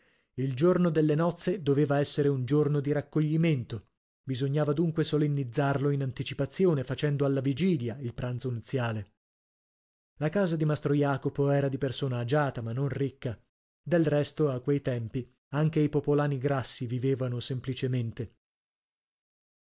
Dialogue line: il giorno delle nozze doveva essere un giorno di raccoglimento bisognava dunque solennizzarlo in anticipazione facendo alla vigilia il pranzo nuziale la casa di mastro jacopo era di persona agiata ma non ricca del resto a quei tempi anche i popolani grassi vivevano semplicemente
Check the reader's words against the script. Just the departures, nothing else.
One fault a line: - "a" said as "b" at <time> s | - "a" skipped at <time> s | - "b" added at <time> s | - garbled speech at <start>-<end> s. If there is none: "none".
none